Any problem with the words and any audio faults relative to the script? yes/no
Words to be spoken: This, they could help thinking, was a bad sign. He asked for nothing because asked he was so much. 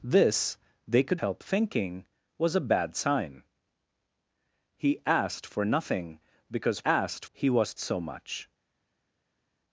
no